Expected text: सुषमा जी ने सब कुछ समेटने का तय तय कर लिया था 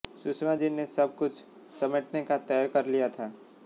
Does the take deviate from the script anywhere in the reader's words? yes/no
yes